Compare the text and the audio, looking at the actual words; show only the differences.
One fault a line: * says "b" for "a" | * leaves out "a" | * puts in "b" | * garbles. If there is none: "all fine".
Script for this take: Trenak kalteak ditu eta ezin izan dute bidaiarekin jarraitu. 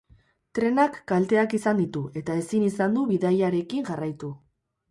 * puts in "izan"
* says "du" for "dute"